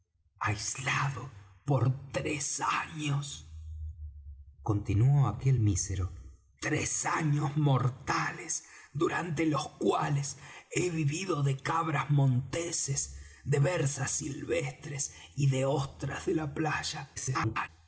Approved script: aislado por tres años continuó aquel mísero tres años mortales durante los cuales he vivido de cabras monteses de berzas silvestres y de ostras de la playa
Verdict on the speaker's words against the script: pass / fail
fail